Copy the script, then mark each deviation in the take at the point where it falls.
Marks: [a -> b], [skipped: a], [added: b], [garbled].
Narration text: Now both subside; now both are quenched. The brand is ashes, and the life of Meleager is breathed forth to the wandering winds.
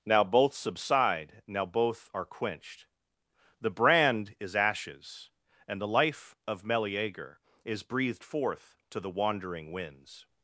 Now both subside; now both are quenched. The brand is ashes, and the life of Meleager is breathed forth to the wandering winds.